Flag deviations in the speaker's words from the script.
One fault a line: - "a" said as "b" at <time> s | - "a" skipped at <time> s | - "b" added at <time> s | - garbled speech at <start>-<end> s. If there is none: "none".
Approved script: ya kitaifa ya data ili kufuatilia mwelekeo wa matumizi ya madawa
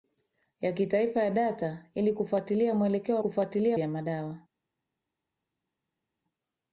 - "matumizi" said as "kufuatilia" at 3.2 s